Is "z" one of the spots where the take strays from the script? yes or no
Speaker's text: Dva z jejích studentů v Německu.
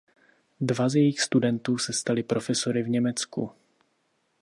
no